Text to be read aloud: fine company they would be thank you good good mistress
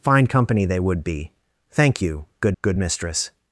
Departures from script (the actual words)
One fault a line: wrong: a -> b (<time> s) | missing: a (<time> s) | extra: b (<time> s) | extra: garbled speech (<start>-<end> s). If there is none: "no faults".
no faults